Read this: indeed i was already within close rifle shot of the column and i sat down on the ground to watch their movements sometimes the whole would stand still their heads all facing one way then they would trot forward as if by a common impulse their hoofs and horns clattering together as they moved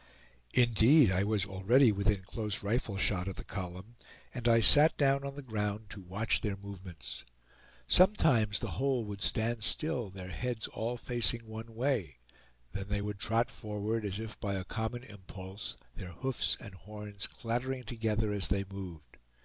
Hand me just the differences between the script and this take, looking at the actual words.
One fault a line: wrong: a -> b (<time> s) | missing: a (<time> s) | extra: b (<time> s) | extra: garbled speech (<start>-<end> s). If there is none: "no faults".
no faults